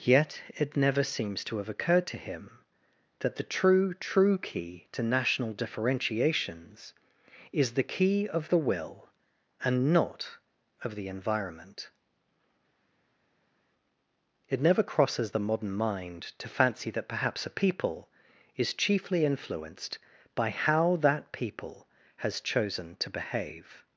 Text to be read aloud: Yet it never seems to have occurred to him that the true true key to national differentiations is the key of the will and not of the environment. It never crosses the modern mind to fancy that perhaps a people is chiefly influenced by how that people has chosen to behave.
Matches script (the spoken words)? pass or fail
pass